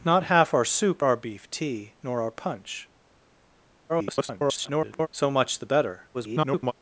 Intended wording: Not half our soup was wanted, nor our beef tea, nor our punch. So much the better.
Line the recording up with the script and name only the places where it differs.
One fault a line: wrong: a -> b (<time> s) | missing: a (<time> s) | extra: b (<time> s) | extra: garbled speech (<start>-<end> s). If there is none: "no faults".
missing: was wanted nor (1.0 s)
extra: garbled speech (3.9-5.1 s)
extra: garbled speech (6.1-6.7 s)